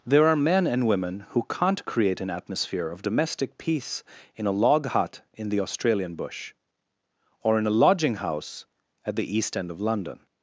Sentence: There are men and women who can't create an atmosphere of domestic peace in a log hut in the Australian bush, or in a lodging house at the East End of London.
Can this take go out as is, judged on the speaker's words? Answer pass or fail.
pass